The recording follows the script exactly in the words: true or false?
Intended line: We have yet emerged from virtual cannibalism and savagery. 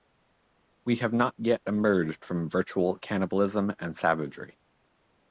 false